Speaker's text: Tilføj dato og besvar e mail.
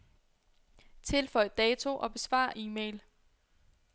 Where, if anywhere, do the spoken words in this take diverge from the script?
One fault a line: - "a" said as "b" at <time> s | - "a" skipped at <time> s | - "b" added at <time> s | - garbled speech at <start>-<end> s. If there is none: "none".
none